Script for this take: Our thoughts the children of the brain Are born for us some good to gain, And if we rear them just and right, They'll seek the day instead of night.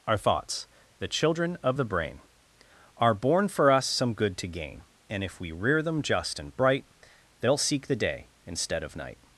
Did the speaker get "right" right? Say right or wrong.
wrong